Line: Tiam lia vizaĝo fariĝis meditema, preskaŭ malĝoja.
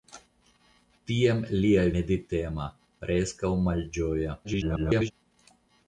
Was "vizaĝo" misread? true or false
true